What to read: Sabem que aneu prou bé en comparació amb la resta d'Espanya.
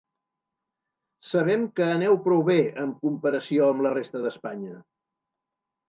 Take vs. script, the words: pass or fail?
pass